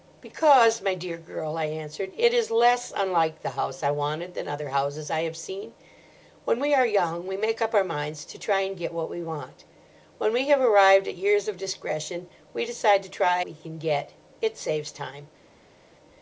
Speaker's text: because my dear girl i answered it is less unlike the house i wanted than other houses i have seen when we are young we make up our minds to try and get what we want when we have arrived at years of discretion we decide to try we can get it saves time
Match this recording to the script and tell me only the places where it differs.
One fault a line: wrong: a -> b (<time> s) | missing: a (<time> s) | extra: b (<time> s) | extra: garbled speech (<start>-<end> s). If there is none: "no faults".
no faults